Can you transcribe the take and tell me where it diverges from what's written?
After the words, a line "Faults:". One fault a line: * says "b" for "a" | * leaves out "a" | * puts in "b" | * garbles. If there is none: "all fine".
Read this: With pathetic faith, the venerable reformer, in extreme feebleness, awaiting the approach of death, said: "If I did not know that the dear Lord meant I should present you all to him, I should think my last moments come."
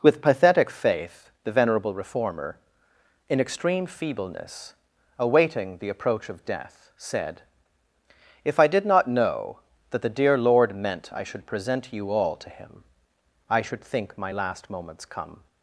With pathetic faith, the venerable reformer, in extreme feebleness, awaiting the approach of death, said: "If I did not know that the dear Lord meant I should present you all to him, I should think my last moments come."
Faults:
all fine